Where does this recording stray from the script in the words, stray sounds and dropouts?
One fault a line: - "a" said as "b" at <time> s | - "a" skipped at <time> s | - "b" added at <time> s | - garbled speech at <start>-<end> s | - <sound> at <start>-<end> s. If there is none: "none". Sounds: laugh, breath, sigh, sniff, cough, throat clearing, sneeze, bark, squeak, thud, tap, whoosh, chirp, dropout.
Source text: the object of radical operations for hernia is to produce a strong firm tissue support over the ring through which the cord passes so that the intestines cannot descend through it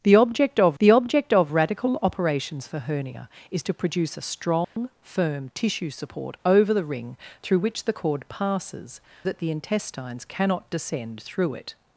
- "the object of" added at 0.8 s
- dropout at 4.6-4.8 s
- "so" skipped at 9.0 s